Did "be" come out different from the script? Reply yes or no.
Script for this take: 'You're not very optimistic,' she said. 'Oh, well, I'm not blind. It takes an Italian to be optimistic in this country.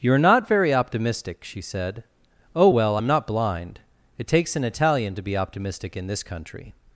no